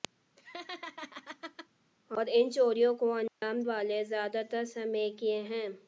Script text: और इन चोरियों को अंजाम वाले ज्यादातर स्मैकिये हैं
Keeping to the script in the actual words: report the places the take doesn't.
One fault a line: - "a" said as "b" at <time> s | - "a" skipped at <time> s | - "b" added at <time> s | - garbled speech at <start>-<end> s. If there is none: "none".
none